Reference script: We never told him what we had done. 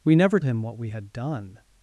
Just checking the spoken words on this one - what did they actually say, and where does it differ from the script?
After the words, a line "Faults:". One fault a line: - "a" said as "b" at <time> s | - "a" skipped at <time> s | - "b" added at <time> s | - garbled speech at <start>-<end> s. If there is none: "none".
We never him what we had done.
Faults:
- "told" skipped at 0.4 s